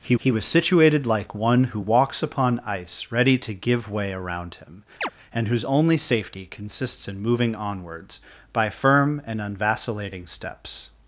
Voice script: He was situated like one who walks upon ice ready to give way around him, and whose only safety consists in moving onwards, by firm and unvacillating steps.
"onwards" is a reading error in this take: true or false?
false